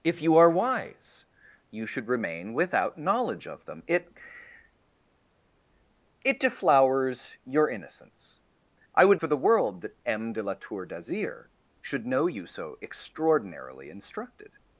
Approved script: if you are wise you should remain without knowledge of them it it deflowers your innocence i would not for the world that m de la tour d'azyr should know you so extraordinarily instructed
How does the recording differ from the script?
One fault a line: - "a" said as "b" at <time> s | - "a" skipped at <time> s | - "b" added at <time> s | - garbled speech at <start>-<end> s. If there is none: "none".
- "not" skipped at 9.2 s